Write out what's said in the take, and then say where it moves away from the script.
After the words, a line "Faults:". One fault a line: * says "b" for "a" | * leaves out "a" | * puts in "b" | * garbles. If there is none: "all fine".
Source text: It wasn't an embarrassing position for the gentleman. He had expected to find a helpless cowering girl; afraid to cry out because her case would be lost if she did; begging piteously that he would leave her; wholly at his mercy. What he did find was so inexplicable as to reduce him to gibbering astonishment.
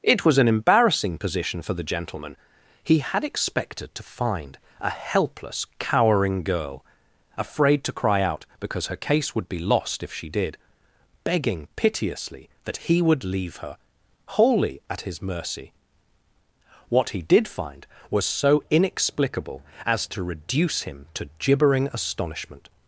It was an embarrassing position for the gentleman. He had expected to find a helpless cowering girl; afraid to cry out because her case would be lost if she did; begging piteously that he would leave her; wholly at his mercy. What he did find was so inexplicable as to reduce him to gibbering astonishment.
Faults:
* says "was" for "wasn't"